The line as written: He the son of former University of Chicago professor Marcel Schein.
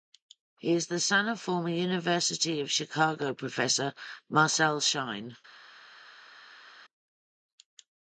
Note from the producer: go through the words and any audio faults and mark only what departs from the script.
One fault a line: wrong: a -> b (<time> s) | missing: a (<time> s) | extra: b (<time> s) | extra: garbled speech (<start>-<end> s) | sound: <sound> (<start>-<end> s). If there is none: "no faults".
extra: is (0.7 s)